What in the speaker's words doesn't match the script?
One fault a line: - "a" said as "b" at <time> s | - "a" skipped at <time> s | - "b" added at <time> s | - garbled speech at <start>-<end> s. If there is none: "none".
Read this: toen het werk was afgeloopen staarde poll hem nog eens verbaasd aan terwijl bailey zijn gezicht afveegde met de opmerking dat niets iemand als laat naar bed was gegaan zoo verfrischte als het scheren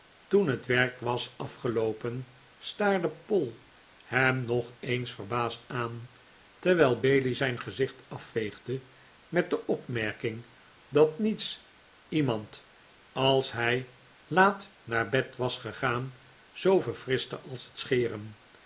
- "hij" added at 13.5 s